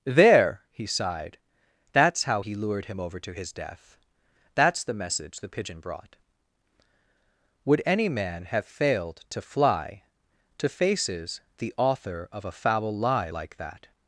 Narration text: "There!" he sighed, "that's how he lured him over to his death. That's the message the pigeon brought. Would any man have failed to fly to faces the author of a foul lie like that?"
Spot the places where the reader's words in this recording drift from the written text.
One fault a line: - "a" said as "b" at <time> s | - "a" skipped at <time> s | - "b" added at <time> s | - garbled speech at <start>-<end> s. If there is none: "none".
none